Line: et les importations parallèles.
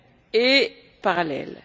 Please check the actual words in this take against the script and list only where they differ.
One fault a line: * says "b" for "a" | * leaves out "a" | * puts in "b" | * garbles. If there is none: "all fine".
* leaves out "les importations"